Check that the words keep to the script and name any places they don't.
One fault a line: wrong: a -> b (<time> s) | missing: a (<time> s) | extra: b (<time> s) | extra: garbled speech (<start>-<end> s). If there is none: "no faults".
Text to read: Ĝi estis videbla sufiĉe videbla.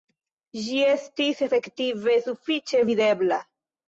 wrong: videbla -> efektive (1.5 s)